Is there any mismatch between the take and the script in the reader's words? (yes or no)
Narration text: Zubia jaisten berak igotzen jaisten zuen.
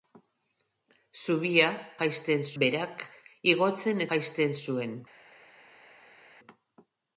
no